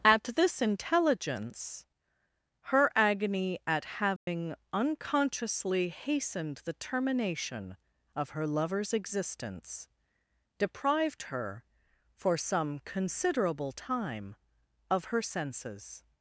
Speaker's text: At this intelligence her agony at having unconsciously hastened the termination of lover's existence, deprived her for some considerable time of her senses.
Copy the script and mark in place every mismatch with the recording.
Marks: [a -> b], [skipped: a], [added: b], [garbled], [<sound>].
At this intelligence her agony at having [dropout] unconsciously hastened the termination of [added: her] lover's existence, deprived her for some considerable time of her senses.